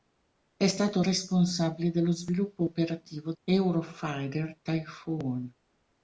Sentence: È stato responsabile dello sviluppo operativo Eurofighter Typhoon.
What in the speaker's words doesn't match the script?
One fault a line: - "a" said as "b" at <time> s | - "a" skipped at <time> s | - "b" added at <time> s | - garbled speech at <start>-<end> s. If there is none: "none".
none